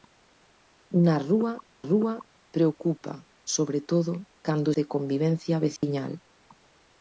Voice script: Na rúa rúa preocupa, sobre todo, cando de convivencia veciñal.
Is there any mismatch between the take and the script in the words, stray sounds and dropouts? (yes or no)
yes